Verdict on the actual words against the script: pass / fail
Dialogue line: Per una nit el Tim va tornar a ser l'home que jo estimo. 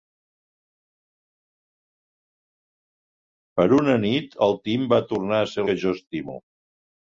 fail